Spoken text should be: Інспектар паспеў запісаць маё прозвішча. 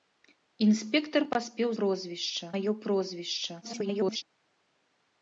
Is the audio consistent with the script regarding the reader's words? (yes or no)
no